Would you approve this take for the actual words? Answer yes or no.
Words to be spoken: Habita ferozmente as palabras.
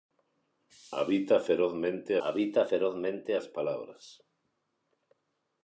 no